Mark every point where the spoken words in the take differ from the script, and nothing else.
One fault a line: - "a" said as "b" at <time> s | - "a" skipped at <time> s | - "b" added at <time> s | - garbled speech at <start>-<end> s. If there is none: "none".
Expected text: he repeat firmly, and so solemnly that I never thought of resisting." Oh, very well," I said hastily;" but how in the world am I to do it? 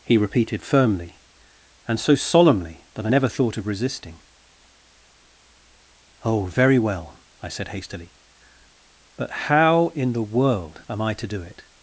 - "repeat" said as "repeated" at 0.2 s